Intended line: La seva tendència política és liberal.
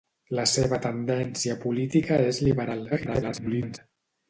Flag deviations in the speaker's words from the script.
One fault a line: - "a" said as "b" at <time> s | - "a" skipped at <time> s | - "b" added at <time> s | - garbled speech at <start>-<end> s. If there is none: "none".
- garbled speech at 2.9-3.8 s